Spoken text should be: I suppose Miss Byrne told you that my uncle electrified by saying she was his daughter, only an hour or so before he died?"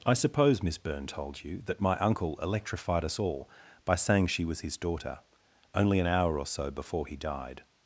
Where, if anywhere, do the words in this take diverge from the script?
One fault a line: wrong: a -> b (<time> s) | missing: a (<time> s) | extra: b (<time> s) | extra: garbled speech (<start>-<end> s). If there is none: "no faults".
extra: us all (3.0 s)